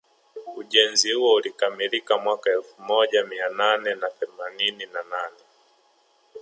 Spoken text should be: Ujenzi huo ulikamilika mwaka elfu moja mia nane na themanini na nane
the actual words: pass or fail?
pass